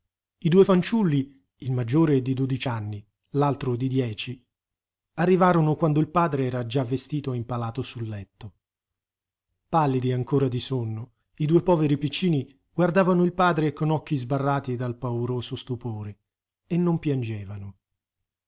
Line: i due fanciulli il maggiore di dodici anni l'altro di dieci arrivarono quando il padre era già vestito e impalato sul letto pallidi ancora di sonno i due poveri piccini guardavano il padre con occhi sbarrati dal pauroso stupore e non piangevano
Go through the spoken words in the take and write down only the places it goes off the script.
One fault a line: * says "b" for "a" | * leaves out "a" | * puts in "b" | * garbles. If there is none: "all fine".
all fine